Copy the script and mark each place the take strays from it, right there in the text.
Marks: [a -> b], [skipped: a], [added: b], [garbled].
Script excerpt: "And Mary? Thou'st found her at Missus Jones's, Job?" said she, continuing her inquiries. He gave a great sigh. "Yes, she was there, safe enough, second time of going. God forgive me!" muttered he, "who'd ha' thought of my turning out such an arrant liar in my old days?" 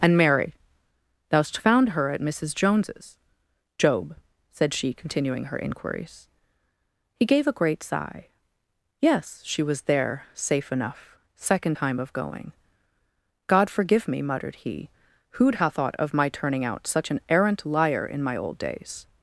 "And Mary? Thou'st found her at Missus Jones's, Job?" said she, continuing her inquiries. He gave a great sigh. "Yes, she was there, safe enough, second time of going. God forgive me!" muttered he, "who'd ha' thought of my turning out such an arrant liar in my old days?"